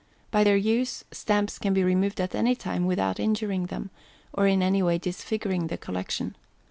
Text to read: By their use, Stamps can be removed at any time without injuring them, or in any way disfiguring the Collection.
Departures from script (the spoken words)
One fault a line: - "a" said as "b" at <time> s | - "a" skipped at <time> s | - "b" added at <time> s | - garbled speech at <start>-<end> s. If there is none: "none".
none